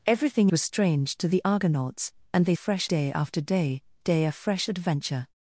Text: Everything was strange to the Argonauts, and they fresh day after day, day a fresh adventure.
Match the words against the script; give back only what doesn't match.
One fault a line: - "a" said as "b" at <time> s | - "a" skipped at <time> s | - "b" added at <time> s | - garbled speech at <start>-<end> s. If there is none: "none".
none